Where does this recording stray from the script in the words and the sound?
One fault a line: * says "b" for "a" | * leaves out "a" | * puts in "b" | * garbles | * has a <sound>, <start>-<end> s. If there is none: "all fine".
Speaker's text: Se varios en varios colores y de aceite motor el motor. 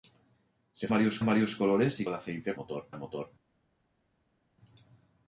all fine